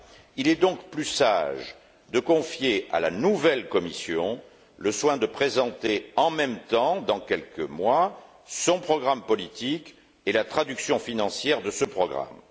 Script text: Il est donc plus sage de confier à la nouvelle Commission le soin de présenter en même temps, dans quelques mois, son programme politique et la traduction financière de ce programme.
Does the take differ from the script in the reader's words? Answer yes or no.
no